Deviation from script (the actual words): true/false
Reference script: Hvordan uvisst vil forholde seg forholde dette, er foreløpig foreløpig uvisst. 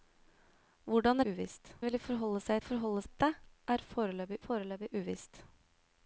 false